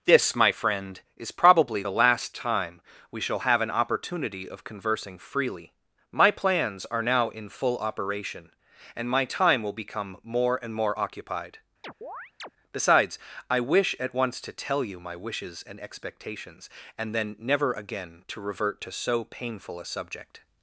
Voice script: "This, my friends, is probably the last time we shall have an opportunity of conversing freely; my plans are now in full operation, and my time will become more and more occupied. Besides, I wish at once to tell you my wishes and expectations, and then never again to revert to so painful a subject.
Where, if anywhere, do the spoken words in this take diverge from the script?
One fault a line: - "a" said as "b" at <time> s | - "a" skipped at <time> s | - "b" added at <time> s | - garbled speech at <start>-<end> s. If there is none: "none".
- "friends" said as "friend" at 0.5 s